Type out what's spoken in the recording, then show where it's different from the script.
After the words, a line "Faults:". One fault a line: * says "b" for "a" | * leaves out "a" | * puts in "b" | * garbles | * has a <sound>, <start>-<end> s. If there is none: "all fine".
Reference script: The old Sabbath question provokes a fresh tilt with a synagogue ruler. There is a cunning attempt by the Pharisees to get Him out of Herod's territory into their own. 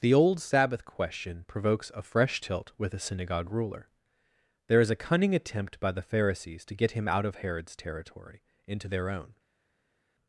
The old Sabbath question provokes a fresh tilt with a synagogue ruler. There is a cunning attempt by the Pharisees to get Him out of Herod's territory into their own.
Faults:
all fine